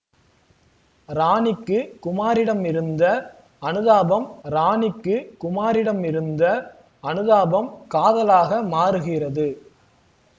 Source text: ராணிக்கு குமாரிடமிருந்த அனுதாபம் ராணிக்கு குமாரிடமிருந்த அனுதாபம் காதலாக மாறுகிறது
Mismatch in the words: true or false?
false